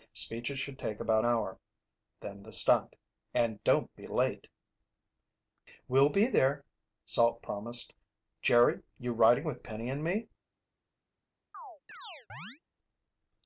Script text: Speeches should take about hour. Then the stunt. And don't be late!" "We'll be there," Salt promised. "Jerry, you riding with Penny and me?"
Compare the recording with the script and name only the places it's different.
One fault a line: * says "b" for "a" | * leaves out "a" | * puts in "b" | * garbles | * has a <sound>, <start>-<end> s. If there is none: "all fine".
* has a chirp, 11.5-12.6 s